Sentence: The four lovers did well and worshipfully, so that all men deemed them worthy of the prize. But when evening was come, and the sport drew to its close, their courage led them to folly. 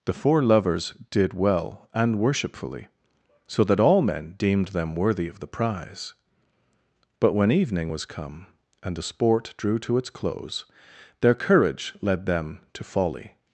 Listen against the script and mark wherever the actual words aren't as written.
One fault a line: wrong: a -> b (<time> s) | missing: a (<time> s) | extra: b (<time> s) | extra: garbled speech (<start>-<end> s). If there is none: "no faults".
no faults